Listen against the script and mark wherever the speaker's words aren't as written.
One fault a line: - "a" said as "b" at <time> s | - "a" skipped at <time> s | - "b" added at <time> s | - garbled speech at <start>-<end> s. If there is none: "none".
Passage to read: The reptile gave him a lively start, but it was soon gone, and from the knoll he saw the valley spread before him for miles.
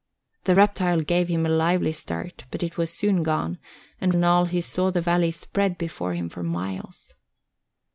- "from the" skipped at 4.2 s